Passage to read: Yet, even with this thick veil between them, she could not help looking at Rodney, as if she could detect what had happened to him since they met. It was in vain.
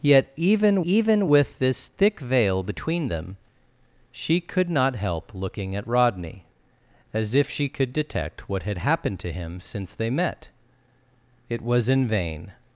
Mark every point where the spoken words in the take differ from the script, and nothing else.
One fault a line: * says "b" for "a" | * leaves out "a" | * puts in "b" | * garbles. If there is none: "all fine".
* puts in "even"